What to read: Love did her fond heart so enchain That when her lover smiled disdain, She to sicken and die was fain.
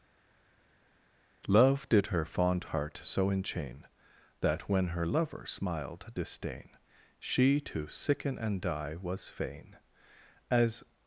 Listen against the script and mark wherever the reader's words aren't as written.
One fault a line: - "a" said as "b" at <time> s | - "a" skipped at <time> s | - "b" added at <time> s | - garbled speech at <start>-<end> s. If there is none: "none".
- "As" added at 10.5 s